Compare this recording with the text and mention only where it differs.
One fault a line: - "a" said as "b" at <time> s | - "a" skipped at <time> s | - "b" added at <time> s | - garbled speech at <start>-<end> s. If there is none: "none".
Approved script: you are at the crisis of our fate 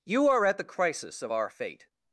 none